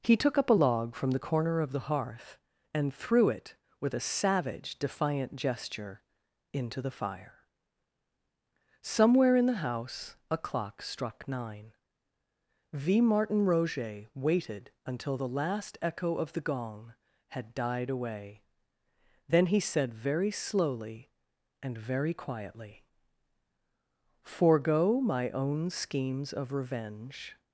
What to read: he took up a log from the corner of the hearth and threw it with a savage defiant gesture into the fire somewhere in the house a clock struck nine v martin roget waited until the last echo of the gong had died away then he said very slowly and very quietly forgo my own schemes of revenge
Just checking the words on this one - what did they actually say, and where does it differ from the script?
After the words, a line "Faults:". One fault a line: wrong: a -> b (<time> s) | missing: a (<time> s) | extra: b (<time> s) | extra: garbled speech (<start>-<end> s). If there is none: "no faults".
he took up a log from the corner of the hearth and threw it with a savage defiant gesture into the fire somewhere in the house a clock struck nine v martin roget waited until the last echo of the gong had died away then he said very slowly and very quietly forgo my own schemes of revenge
Faults:
no faults